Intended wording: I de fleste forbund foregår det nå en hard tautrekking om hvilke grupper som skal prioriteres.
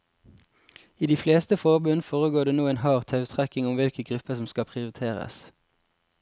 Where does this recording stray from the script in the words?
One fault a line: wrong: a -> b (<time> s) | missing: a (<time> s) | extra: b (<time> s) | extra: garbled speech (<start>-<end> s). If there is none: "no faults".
no faults